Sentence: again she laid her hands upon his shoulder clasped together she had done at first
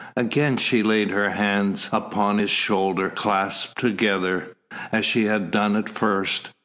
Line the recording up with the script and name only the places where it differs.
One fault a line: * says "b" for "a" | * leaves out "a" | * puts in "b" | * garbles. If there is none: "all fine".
* puts in "as"